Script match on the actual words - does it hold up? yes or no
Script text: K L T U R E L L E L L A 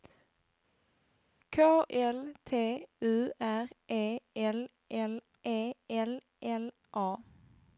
yes